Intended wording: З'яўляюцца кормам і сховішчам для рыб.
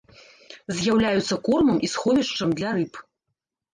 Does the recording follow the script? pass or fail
pass